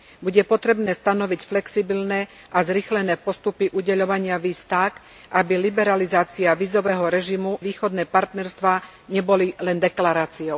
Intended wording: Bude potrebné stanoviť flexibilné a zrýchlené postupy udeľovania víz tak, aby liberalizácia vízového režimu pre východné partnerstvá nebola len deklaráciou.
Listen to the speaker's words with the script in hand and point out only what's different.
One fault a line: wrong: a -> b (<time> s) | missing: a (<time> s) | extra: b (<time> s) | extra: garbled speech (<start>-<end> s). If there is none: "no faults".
missing: pre (7.6 s)